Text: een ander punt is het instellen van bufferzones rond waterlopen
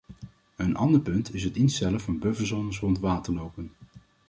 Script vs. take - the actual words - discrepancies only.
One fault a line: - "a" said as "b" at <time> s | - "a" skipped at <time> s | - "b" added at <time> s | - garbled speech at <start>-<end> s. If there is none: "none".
none